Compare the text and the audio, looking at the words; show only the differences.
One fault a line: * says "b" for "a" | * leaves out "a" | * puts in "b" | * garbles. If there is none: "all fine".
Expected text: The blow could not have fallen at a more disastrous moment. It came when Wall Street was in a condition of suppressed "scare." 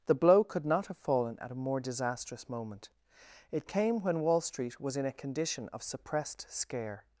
all fine